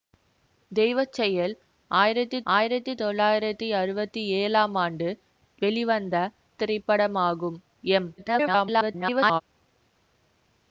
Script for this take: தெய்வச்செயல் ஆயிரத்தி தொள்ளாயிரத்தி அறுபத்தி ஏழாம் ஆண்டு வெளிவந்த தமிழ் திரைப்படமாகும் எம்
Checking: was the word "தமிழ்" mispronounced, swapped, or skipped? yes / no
yes